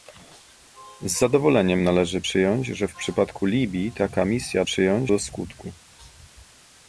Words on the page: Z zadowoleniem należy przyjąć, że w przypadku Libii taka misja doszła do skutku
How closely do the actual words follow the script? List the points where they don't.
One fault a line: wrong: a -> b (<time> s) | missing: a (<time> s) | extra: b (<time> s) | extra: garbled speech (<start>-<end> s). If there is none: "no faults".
wrong: doszła -> przyjąć (4.6 s)